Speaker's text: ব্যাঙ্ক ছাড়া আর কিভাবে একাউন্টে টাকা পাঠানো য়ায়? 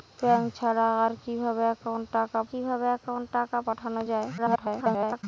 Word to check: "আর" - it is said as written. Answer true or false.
true